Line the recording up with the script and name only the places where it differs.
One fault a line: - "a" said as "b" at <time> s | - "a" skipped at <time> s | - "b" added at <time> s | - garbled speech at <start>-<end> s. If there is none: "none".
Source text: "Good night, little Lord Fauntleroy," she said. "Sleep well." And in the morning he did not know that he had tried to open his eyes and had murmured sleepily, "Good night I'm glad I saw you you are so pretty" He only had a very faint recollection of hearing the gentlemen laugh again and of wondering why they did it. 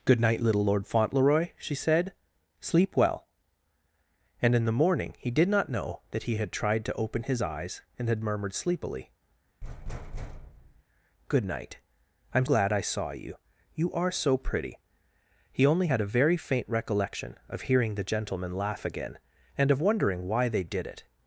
none